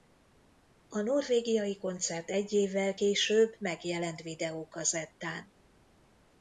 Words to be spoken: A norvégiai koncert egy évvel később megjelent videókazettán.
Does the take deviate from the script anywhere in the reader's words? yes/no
no